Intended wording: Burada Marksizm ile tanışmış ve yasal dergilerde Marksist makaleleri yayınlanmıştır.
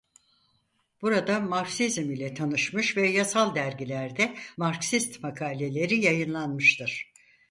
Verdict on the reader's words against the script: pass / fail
pass